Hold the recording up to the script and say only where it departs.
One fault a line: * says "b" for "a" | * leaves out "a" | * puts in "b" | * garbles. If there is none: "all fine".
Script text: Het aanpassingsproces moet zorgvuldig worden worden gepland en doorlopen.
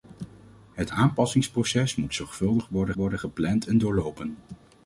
all fine